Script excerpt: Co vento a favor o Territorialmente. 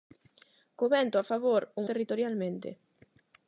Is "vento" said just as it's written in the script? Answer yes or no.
yes